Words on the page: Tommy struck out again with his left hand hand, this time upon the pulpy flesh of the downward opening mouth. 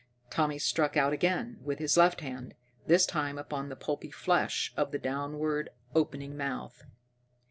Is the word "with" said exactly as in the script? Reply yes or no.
yes